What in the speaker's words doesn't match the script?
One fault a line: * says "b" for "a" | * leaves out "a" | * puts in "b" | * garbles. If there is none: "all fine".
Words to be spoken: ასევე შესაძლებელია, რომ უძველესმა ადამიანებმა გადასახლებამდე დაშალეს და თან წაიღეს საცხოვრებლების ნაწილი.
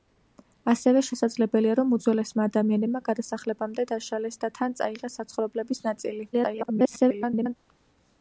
* garbles